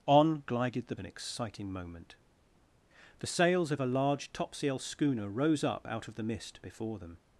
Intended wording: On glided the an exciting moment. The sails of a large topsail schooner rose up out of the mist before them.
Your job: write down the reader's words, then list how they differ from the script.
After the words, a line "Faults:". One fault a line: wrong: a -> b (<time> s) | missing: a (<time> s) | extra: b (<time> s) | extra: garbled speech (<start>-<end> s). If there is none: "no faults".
On glided the an exciting moment. The sails of a large topsail schooner rose up out of the mist before them.
Faults:
no faults